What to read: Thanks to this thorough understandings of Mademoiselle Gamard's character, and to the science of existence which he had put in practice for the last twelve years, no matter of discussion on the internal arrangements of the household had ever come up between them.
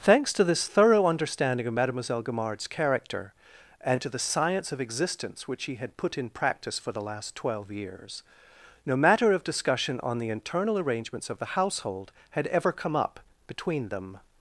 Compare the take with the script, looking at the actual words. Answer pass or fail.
fail